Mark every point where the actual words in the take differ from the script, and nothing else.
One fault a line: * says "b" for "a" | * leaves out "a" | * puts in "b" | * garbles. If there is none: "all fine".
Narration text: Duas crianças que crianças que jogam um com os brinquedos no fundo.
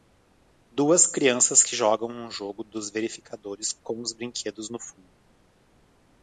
* says "jogam um jogo dos verificadores" for "crianças que jogam um"